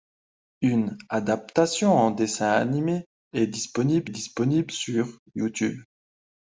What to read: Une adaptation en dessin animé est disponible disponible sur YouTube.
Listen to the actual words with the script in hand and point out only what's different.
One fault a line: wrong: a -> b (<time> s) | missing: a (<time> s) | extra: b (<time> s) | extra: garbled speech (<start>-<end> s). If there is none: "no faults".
no faults